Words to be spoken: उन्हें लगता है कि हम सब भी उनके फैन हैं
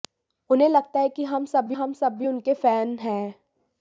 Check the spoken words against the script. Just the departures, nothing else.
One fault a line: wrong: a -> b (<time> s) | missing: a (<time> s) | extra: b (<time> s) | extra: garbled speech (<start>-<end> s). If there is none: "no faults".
extra: हम सब भी (1.7 s)